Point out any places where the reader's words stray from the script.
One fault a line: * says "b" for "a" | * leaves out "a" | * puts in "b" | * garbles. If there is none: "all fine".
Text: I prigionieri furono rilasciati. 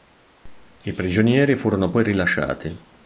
* puts in "poi"